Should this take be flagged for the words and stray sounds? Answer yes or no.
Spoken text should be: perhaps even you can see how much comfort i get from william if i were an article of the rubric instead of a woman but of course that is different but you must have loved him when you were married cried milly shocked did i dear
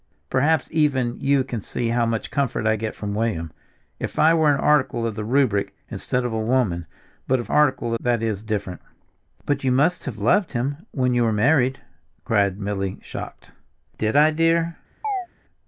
yes